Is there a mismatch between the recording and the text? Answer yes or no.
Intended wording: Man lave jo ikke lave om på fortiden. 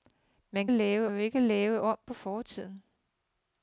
no